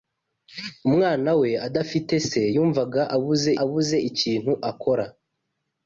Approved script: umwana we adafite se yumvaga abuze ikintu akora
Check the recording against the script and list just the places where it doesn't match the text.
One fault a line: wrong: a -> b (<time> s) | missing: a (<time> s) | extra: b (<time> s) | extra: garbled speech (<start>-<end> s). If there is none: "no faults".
extra: abuze (3.6 s)